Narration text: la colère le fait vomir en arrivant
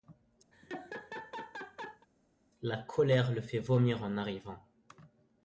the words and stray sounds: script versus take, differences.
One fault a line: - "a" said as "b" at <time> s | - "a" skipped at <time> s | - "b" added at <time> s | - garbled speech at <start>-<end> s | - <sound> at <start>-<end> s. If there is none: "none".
- laugh at 0.5-2.1 s